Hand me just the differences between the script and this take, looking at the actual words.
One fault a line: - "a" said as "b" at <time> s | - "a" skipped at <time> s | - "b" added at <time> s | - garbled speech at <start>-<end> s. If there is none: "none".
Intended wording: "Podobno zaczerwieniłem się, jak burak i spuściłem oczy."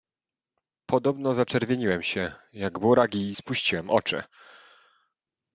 none